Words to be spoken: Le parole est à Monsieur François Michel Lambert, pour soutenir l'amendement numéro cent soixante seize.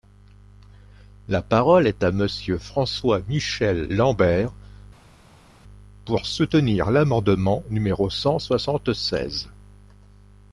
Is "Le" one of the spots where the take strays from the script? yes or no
yes